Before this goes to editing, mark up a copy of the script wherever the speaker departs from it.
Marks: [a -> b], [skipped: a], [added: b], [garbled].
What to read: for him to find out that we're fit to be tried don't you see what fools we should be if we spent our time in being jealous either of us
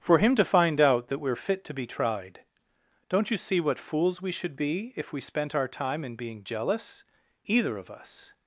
for him to find out that we're fit to be tried don't you see what fools we should be if we spent our time in being jealous either of us